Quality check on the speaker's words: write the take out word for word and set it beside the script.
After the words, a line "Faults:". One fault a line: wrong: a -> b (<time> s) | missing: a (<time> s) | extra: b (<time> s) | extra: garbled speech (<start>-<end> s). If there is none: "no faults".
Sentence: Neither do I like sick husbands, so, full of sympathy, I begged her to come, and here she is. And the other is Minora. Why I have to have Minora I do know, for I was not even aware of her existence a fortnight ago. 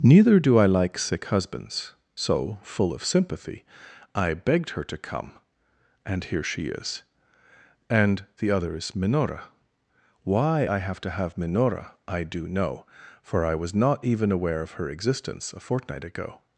Neither do I like sick husbands, so, full of sympathy, I begged her to come, and here she is. And the other is Minora. Why I have to have Minora I do know, for I was not even aware of her existence a fortnight ago.
Faults:
no faults